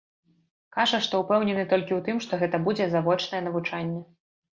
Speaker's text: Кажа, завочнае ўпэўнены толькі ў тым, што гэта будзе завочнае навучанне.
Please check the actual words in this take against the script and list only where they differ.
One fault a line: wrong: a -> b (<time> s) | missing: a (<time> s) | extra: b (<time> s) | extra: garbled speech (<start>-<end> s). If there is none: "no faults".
wrong: завочнае -> што (1.1 s)